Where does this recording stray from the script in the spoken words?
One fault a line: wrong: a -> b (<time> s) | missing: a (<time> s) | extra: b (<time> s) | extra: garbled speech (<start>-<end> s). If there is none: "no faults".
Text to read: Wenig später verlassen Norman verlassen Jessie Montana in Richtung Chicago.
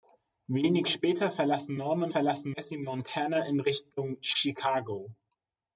no faults